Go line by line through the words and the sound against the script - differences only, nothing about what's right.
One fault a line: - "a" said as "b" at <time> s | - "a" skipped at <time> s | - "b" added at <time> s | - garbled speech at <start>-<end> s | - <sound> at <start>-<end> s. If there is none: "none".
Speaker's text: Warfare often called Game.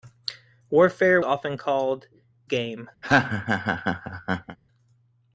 - laugh at 3.0-4.6 s